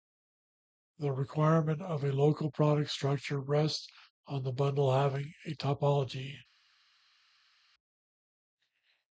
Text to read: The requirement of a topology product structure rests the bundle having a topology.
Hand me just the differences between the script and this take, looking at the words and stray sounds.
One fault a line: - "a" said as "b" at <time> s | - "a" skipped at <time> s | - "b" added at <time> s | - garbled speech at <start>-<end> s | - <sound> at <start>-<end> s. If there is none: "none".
- "topology" said as "local" at 2.1 s
- "on" added at 4.3 s